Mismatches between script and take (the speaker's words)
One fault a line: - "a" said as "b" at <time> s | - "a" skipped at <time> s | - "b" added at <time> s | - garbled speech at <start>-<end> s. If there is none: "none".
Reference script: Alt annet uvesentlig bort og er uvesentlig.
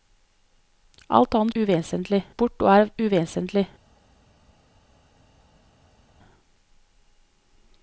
none